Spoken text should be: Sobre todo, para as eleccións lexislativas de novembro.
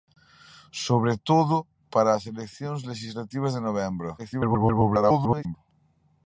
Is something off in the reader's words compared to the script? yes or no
yes